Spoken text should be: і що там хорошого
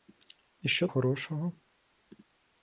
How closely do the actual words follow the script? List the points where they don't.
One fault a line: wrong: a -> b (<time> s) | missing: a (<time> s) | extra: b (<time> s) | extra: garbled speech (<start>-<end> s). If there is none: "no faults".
missing: там (0.9 s)